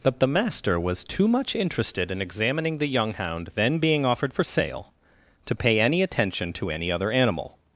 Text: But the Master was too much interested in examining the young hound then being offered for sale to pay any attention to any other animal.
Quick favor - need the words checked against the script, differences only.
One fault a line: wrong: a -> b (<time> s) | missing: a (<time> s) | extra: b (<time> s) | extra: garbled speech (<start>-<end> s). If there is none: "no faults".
no faults